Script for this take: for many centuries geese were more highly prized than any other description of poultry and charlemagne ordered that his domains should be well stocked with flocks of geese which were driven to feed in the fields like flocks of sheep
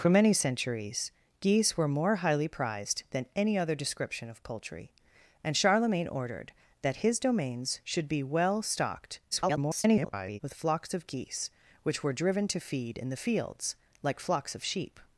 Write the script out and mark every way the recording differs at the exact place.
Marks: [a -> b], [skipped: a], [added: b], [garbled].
for many centuries geese were more highly prized than any other description of poultry and charlemagne ordered that his domains should be well stocked [garbled] with flocks of geese which were driven to feed in the fields like flocks of sheep